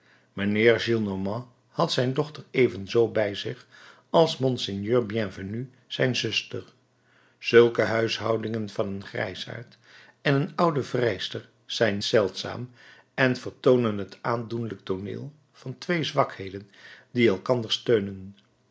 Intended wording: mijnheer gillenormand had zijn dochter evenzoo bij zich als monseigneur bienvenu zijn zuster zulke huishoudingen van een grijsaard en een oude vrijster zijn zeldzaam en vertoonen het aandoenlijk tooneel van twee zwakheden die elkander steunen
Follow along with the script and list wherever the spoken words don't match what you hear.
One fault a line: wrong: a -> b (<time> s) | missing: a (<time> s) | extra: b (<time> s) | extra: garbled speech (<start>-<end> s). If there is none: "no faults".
no faults